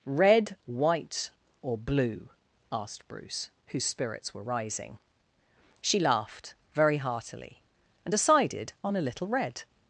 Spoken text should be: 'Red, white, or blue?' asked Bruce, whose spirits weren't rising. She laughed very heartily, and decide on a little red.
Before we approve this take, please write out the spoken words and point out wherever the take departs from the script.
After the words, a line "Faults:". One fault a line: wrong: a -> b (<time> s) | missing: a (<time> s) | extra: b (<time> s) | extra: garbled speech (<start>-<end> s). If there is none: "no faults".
'Red, white, or blue?' asked Bruce, whose spirits were rising. She laughed very heartily, and decided on a little red.
Faults:
wrong: weren't -> were (4.3 s)
wrong: decide -> decided (8.1 s)